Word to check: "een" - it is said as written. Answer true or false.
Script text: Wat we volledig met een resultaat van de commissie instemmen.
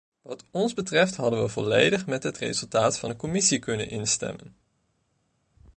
false